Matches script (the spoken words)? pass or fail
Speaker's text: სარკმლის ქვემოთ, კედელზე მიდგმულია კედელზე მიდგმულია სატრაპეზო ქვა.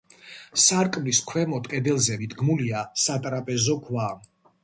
fail